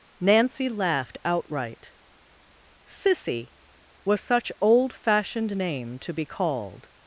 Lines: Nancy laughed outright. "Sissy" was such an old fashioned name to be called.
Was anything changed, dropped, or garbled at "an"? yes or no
yes